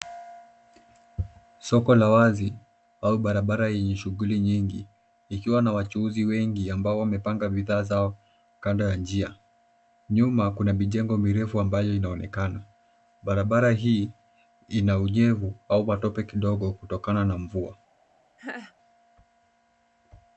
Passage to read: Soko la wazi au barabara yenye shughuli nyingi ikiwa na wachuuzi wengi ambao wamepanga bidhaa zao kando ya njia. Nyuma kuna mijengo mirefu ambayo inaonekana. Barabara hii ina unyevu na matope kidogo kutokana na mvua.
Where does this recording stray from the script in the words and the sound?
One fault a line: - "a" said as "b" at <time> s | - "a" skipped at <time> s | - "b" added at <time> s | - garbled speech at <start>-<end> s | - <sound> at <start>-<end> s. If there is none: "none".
- "na" said as "au" at 15.7 s
- laugh at 18.4-18.7 s